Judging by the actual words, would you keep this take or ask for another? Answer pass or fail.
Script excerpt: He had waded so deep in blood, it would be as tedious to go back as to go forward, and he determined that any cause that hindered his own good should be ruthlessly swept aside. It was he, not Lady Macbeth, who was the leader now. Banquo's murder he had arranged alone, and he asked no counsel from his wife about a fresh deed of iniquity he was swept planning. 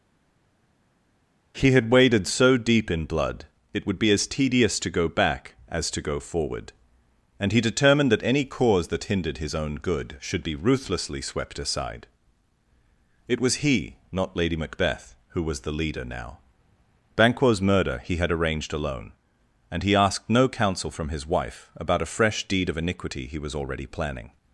fail